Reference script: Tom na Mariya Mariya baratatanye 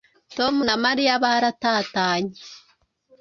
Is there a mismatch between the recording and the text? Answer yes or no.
yes